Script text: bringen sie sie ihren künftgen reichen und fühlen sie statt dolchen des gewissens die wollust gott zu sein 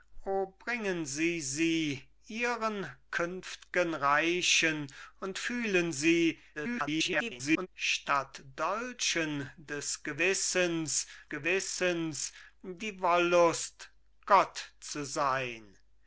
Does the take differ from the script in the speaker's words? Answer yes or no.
yes